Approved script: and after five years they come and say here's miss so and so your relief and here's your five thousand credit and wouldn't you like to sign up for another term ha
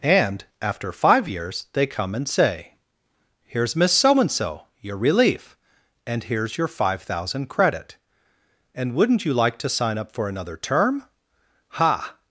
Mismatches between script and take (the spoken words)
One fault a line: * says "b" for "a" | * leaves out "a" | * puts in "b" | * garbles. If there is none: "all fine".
all fine